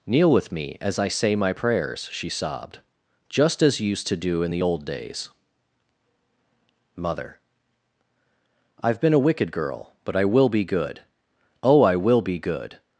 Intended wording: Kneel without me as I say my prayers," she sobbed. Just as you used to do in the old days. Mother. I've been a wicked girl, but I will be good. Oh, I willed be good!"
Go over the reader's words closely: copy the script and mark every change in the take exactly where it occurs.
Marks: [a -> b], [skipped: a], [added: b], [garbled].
Kneel [without -> with] me as I say my prayers," she sobbed. Just as you used to do in the old days. Mother. I've been a wicked girl, but I will be good. Oh, I [willed -> will] be good!"